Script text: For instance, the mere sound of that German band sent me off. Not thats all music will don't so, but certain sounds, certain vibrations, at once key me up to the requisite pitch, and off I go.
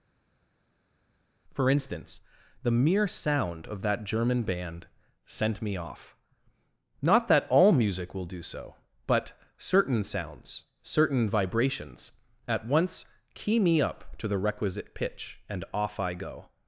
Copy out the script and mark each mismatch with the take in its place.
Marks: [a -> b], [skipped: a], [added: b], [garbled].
For instance, the mere sound of that German band sent me off. Not [thats -> that] all music will [don't -> do] so, but certain sounds, certain vibrations, at once key me up to the requisite pitch, and off I go.